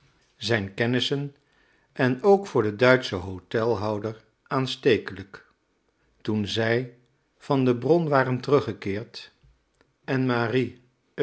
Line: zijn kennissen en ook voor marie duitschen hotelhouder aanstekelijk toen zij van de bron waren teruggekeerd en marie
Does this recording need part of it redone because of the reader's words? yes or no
yes